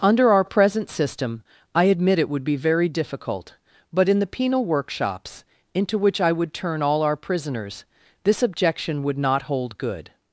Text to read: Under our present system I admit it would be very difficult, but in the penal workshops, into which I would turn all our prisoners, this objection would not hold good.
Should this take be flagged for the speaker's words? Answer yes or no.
no